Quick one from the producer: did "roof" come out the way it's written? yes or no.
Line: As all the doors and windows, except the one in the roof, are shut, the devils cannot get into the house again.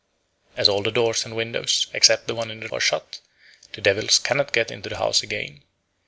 no